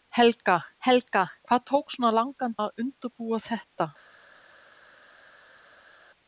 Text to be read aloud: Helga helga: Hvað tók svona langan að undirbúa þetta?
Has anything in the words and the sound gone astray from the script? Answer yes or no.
no